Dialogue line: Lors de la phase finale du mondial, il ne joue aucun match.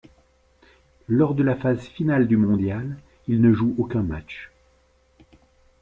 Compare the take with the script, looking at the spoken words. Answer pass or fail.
pass